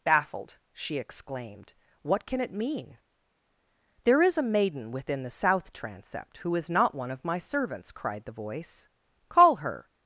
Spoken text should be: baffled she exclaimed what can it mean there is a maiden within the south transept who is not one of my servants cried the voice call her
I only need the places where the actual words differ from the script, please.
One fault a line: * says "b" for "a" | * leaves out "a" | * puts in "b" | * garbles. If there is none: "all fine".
all fine